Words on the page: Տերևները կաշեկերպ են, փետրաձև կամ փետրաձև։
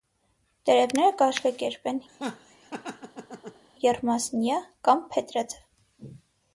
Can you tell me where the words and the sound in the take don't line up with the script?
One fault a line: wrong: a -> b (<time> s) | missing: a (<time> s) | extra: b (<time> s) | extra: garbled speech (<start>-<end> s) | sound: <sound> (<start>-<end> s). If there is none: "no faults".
sound: laugh (2.1-3.6 s)
wrong: փետրաձև -> եռմասնյա (3.8 s)